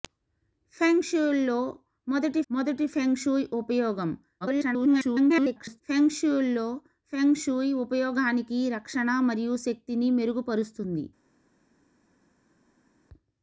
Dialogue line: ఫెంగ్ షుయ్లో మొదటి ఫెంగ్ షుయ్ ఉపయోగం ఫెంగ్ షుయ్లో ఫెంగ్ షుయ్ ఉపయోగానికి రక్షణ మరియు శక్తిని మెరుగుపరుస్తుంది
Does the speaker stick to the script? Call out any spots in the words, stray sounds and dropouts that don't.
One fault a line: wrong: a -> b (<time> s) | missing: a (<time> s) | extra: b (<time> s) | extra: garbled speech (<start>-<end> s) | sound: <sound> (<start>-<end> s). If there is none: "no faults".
extra: మొదటి (2.5 s)
extra: garbled speech (4.4-5.8 s)